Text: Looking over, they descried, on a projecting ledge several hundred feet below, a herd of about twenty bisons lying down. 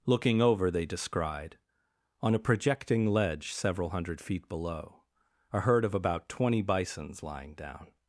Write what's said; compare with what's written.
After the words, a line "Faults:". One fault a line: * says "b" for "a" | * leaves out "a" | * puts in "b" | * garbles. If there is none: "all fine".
Looking over, they descried, on a projecting ledge several hundred feet below, a herd of about twenty bisons lying down.
Faults:
all fine